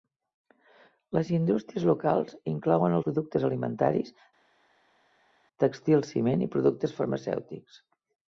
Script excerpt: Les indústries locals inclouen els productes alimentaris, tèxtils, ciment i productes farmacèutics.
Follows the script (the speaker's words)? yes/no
no